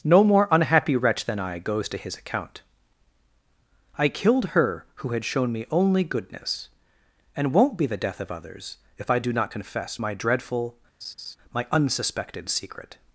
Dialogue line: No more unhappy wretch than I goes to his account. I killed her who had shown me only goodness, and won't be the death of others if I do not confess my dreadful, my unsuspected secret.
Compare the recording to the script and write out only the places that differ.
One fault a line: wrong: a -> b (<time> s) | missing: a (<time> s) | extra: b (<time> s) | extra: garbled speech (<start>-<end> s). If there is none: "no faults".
no faults